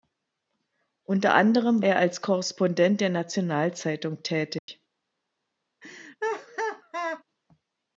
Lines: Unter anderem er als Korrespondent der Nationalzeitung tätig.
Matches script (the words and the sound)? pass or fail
fail